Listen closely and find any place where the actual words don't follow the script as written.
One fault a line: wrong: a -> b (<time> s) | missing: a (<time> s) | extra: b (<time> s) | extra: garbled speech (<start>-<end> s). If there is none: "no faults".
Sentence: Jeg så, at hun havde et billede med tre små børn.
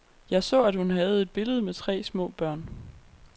no faults